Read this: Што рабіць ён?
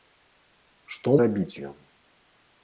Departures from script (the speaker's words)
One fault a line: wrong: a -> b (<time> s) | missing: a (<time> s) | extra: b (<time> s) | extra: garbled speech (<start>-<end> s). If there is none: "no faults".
no faults